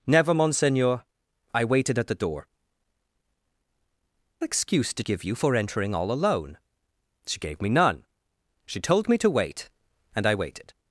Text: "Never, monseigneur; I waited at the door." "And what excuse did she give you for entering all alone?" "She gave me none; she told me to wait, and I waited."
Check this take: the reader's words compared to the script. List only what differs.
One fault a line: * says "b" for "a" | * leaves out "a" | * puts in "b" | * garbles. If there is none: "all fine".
* leaves out "And what"
* leaves out "she"